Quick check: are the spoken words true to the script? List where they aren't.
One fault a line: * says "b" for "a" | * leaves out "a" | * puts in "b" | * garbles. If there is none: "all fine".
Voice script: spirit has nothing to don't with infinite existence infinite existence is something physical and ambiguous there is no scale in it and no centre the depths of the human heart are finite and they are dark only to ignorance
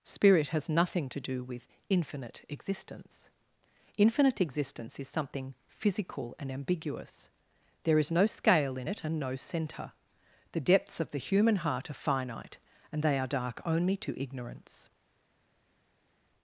* says "do" for "don't"